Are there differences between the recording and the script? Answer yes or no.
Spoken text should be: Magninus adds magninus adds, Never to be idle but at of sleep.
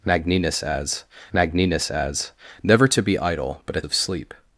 no